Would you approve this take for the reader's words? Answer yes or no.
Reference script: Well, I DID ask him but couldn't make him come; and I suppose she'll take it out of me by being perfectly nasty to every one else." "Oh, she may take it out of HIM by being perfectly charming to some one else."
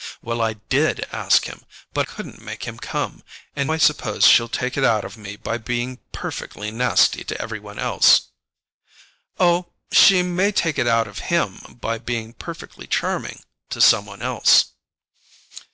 yes